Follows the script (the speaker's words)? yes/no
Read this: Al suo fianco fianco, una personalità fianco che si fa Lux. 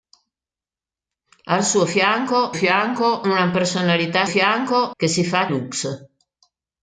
yes